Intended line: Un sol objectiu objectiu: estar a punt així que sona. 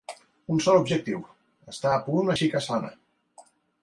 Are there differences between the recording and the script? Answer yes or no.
yes